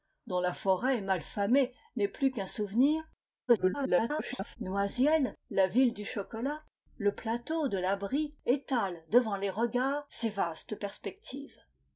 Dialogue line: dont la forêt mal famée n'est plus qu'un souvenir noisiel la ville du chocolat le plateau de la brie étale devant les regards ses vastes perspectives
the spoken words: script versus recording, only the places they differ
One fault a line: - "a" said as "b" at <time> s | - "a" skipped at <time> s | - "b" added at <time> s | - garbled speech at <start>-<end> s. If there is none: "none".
- garbled speech at 3.5-4.6 s